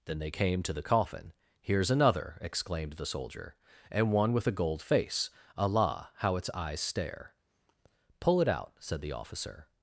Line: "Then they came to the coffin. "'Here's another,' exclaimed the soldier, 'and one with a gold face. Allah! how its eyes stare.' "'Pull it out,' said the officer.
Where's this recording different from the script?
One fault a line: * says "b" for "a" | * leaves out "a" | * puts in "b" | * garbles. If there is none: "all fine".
all fine